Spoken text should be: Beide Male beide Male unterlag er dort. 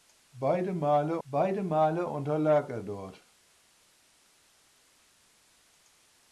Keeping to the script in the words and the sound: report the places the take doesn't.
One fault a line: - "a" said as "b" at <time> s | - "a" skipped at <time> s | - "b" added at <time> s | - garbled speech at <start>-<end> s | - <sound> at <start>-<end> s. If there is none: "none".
none